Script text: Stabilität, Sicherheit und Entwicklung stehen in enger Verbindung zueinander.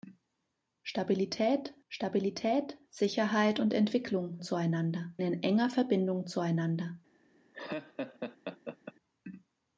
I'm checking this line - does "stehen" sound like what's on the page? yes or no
no